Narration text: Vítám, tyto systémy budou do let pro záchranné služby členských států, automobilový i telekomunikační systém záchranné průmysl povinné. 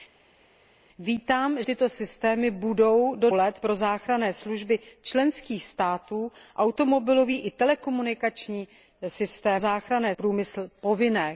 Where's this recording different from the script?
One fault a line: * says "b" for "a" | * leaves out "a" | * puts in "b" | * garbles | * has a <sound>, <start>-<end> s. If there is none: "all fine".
all fine